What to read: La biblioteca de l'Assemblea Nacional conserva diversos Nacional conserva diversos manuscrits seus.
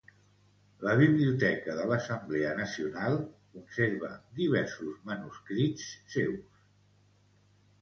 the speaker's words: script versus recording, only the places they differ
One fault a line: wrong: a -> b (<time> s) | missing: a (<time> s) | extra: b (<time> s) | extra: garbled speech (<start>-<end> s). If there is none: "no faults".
missing: Nacional conserva diversos (5.0 s)